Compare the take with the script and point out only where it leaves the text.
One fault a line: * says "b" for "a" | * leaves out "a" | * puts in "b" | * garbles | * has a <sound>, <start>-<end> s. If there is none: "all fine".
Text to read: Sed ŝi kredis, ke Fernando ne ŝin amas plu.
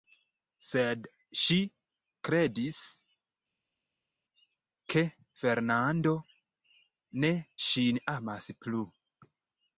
all fine